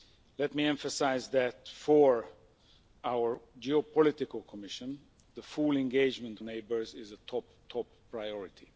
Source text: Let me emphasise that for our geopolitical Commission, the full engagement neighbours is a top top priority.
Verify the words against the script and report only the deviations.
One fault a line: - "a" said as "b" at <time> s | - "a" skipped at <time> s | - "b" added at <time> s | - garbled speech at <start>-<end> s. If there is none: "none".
none